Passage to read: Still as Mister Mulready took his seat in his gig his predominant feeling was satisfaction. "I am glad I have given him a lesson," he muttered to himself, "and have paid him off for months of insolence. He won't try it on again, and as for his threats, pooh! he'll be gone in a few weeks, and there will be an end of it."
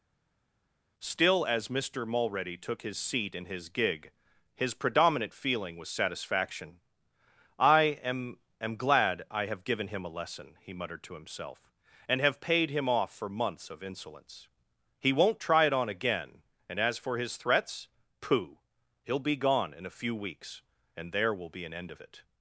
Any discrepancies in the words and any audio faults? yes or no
yes